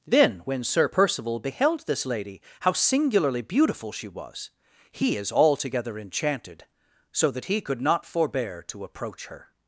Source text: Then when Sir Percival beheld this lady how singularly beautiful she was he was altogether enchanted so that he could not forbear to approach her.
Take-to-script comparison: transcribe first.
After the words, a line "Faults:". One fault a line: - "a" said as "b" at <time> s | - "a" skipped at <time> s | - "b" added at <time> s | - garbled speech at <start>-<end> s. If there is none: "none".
Then when Sir Percival beheld this lady how singularly beautiful she was he is altogether enchanted so that he could not forbear to approach her.
Faults:
- "was" said as "is" at 5.2 s